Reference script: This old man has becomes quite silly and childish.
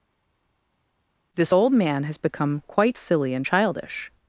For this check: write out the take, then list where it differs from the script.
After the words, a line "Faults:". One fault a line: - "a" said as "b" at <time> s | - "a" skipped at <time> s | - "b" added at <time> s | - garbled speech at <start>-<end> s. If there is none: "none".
This old man has become quite silly and childish.
Faults:
- "becomes" said as "become" at 2.2 s